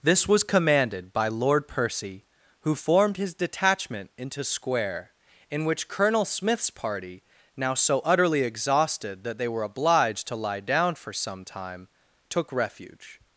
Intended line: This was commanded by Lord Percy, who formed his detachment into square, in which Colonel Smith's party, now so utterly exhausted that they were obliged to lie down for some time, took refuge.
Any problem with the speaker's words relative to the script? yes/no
no